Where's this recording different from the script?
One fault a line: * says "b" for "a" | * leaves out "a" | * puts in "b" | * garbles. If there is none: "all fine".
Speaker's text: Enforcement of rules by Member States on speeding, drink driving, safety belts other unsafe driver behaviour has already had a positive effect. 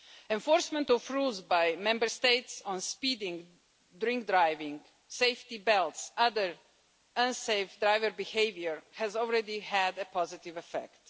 all fine